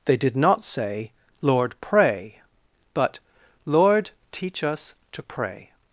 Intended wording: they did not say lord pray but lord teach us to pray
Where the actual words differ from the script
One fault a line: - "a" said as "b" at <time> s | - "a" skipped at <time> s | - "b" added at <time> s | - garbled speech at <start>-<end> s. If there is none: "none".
none